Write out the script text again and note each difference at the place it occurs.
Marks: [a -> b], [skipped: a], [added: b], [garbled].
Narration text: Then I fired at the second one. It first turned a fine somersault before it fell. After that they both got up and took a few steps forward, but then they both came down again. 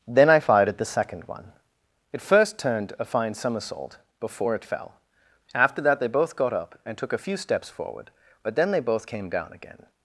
Then I fired at the second one. It first turned a fine somersault before it fell. After that they both got up and took a few steps forward, but then they both came down again.